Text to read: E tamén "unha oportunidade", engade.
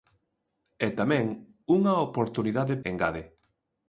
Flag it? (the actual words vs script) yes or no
no